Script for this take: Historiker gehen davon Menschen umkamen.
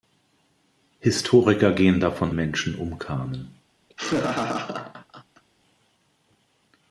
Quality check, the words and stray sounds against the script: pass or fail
fail